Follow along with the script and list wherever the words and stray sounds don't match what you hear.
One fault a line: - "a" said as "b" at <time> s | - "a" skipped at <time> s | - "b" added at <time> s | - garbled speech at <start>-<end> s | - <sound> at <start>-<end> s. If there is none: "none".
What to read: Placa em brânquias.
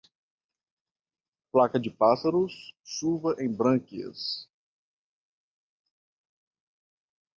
- "de pássaros chuva" added at 1.8 s